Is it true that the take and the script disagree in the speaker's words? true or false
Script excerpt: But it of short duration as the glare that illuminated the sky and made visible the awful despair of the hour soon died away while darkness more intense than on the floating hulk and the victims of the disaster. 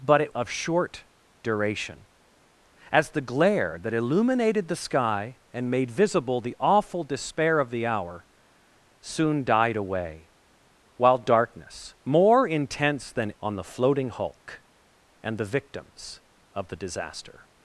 false